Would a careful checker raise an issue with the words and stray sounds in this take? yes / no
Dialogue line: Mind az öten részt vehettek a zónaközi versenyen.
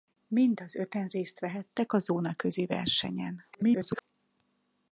yes